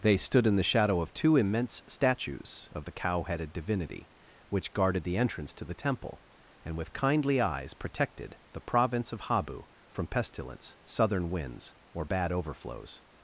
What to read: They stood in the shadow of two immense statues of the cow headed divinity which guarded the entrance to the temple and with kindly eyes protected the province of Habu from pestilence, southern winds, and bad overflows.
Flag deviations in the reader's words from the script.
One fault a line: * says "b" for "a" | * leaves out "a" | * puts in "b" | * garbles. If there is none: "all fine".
* says "or" for "and"